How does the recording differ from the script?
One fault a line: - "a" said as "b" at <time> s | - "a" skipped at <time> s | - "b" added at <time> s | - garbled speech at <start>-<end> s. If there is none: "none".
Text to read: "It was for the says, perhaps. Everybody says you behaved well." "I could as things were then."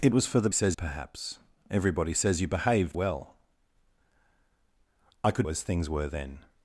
none